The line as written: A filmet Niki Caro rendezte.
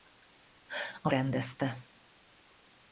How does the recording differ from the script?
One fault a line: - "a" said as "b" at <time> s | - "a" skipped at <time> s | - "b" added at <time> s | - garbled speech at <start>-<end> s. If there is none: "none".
- "filmet Niki Caro" skipped at 1.1 s